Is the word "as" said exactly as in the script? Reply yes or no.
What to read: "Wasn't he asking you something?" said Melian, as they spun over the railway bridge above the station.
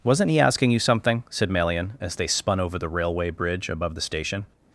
yes